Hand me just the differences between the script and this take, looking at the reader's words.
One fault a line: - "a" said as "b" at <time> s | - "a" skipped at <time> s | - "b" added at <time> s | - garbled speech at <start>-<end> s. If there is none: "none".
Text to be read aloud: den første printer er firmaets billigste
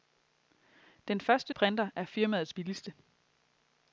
none